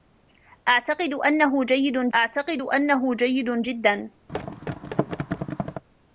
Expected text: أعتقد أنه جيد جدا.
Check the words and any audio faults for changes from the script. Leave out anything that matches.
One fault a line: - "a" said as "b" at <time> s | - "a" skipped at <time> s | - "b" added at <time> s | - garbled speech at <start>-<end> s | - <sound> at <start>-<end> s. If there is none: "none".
- "أعتقد أنه جيد" added at 2.1 s
- thud at 4.3-5.8 s